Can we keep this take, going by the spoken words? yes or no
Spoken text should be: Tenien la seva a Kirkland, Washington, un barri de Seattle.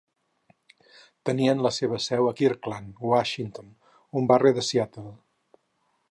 no